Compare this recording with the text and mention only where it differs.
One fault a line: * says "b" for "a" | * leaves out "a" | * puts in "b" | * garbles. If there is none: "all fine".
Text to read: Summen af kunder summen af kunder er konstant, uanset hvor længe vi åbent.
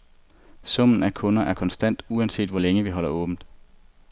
* leaves out "summen af kunder"
* puts in "holder"